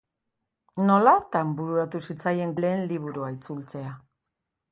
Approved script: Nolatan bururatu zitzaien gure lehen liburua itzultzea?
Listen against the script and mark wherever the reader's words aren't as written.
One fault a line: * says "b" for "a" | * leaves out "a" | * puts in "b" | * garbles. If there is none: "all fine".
* leaves out "gure"